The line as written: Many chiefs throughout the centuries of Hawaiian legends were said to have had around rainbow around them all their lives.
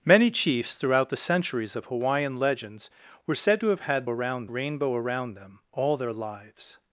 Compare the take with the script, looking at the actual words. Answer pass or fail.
pass